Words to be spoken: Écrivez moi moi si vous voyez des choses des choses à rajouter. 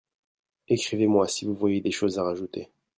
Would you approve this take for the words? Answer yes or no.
no